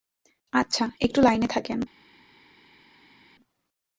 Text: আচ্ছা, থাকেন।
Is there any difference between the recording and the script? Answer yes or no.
yes